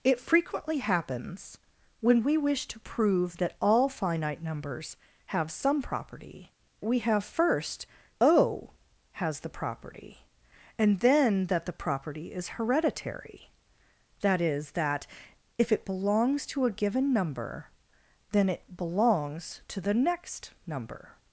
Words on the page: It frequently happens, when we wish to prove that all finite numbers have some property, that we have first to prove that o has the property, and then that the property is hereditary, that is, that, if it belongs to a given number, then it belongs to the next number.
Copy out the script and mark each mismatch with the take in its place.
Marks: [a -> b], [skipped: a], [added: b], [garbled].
It frequently happens, when we wish to prove that all finite numbers have some property, [skipped: that] we have first [skipped: to prove that] o has the property, and then that the property is hereditary, that is, that, if it belongs to a given number, then it belongs to the next number.